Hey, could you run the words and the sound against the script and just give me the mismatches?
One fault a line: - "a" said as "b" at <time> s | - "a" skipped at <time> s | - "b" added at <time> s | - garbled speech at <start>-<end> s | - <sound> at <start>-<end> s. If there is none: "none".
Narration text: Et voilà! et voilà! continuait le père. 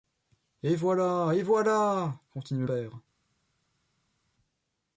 - "le" skipped at 2.6 s